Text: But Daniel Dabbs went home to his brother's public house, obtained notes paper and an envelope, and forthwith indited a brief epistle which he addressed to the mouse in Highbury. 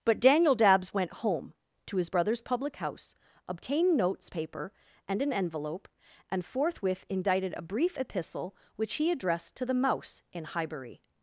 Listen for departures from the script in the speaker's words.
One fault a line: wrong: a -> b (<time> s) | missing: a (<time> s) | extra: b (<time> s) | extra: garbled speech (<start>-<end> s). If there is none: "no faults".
no faults